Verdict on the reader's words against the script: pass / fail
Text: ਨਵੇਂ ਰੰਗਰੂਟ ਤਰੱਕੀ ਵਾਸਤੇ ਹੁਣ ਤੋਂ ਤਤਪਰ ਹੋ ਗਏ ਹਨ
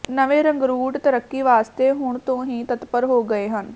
fail